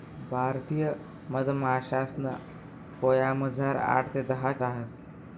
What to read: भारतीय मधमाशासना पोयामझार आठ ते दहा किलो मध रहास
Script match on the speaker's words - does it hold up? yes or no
no